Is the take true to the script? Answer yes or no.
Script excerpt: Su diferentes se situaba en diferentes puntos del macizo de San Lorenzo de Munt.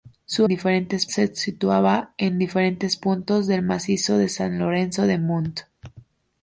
yes